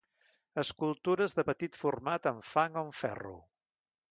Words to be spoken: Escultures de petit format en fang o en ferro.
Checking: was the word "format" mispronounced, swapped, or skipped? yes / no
no